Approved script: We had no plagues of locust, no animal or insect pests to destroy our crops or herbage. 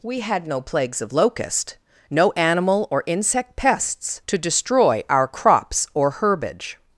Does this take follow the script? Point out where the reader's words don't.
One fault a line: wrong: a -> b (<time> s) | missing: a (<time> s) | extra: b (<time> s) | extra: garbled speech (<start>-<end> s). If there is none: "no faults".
no faults